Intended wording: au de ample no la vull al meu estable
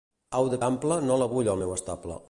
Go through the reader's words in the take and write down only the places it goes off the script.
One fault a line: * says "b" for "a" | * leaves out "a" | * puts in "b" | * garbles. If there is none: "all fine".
all fine